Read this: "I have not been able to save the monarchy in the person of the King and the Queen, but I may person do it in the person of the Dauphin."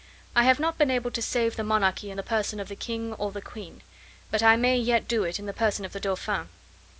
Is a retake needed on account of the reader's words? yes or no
yes